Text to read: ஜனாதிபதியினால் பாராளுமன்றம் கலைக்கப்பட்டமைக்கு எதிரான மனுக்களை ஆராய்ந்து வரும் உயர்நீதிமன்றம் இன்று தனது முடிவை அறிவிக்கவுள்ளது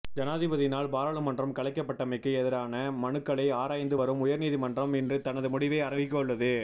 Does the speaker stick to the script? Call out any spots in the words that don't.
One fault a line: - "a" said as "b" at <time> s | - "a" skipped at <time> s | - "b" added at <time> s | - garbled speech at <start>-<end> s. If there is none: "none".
none